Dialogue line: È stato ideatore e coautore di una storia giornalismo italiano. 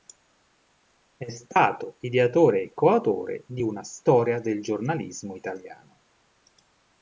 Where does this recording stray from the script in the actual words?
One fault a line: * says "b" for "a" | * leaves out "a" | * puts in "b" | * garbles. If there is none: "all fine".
* puts in "del"